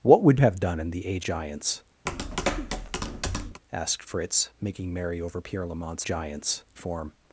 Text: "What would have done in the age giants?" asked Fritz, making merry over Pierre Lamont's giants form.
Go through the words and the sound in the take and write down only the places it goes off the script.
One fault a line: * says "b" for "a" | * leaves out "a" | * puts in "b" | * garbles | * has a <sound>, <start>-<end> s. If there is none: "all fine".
* has a tap, 2.1-3.6 s